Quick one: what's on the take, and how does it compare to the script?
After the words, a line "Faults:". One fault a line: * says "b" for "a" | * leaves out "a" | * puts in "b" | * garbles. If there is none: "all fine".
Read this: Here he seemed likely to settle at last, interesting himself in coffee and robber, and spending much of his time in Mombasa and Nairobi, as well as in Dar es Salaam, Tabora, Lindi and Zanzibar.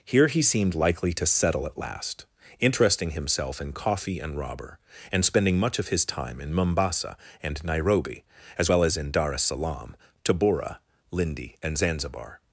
Here he seemed likely to settle at last, interesting himself in coffee and robber, and spending much of his time in Mombasa and Nairobi, as well as in Dar es Salaam, Tabora, Lindi and Zanzibar.
Faults:
all fine